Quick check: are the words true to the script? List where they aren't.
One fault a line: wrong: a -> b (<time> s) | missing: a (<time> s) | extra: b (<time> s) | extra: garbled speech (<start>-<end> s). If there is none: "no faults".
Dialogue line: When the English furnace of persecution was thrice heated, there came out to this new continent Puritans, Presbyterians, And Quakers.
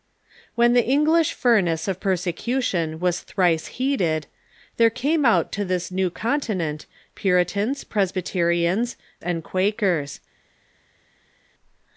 no faults